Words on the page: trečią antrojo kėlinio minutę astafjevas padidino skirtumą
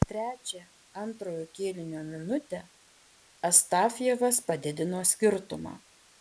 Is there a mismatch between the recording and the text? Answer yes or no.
no